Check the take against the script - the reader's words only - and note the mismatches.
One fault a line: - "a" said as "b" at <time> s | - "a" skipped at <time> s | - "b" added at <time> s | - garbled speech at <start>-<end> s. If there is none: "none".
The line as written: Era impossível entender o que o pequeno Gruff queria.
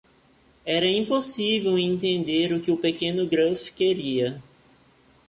none